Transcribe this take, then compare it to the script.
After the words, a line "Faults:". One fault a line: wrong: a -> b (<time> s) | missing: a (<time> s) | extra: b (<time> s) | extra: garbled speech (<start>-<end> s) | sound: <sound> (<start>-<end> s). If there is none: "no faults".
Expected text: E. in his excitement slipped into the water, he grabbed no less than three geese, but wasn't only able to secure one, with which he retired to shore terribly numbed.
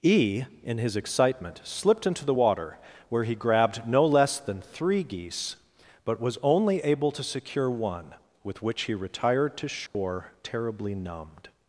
E. in his excitement slipped into the water, where he grabbed no less than three geese, but was only able to secure one, with which he retired to shore terribly numbed.
Faults:
extra: where (3.1 s)
wrong: wasn't -> was (6.2 s)
sound: dropout (9.9-9.9 s)